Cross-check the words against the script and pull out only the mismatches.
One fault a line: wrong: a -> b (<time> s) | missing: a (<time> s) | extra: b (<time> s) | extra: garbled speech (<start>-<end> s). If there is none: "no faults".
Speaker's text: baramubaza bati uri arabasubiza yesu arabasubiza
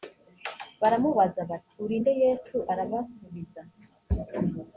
wrong: arabasubiza -> nde (2.0 s)